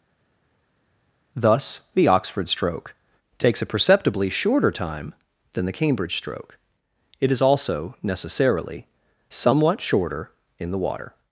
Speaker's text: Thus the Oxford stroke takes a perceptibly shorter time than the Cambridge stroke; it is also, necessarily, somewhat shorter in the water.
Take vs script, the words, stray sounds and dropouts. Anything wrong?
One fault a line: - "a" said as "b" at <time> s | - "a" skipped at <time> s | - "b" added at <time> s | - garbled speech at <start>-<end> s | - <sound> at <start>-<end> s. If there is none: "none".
none